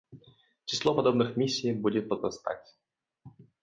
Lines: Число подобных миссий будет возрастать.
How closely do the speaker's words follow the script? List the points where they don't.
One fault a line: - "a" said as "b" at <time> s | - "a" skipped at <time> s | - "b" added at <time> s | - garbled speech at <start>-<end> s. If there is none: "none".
none